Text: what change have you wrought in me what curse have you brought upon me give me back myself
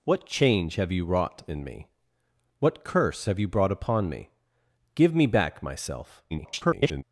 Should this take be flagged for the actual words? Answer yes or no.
yes